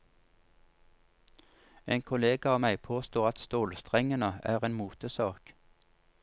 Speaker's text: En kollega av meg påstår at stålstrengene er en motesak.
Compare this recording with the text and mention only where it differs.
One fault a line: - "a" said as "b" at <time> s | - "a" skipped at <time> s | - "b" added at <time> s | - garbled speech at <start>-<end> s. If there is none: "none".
none